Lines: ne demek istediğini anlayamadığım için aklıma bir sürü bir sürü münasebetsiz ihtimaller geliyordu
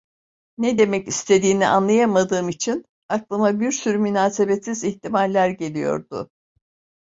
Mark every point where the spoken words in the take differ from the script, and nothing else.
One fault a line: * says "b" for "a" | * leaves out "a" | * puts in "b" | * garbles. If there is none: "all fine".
* leaves out "bir sürü"